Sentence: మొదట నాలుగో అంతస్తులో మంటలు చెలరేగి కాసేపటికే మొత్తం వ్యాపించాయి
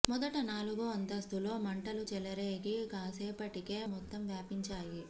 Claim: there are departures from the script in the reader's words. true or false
false